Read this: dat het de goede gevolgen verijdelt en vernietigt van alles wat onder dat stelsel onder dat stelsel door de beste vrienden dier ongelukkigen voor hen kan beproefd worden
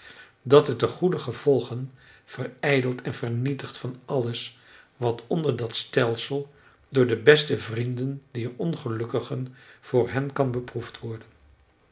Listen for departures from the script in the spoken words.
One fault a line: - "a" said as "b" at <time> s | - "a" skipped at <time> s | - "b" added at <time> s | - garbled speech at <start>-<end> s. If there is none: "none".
- "onder dat stelsel" skipped at 6.5 s